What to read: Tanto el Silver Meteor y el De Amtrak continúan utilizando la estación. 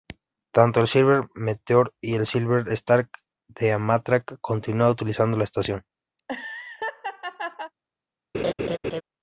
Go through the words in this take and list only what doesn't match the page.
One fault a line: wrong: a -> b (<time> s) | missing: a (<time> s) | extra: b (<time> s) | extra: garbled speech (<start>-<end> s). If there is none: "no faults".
extra: Silver Star (2.2 s)